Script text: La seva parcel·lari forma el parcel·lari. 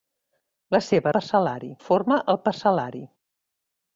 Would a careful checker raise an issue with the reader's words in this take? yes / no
no